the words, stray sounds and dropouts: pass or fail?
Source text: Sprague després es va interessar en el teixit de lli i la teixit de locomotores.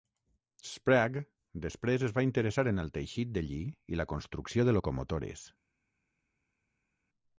fail